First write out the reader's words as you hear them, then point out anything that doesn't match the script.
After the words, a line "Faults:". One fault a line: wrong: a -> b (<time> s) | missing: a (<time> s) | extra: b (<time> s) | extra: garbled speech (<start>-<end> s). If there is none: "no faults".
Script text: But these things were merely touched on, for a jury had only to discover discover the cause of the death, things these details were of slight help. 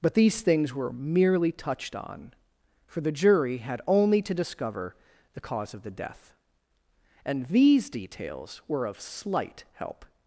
But these things were merely touched on, for the jury had only to discover the cause of the death, and these details were of slight help.
Faults:
wrong: a -> the (3.0 s)
missing: discover (5.0 s)
wrong: things -> and (7.2 s)